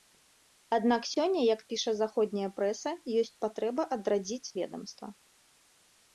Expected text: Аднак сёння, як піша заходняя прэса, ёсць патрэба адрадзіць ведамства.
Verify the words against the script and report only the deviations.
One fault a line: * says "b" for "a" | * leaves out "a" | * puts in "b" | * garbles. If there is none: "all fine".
all fine